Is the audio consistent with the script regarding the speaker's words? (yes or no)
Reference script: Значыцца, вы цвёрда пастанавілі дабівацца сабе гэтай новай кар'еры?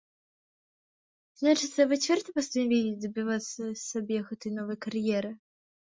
yes